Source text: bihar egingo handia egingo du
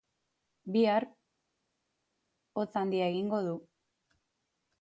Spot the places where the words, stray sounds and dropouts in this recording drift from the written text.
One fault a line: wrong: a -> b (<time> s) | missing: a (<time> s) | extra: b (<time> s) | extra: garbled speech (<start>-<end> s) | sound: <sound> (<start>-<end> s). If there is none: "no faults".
wrong: egingo -> hotz (2.6 s)